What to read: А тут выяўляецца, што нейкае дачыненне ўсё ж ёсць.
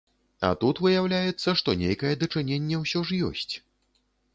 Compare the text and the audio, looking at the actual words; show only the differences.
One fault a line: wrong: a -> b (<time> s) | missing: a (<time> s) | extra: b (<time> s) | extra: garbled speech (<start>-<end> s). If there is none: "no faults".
no faults